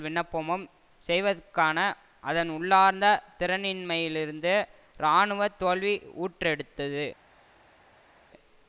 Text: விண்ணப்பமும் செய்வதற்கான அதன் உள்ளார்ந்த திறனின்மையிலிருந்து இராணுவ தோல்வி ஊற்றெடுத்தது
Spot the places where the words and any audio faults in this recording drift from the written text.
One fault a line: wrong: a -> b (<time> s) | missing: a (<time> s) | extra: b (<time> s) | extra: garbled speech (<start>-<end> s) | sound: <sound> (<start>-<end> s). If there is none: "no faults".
no faults